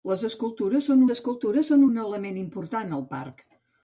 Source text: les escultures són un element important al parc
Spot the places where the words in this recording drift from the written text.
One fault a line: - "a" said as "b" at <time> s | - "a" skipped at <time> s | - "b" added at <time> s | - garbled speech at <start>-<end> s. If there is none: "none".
- "escultures són" added at 1.1 s